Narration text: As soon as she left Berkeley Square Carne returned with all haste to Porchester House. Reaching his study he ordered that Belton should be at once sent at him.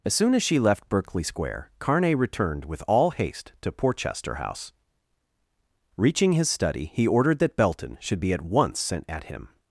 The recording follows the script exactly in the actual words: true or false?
true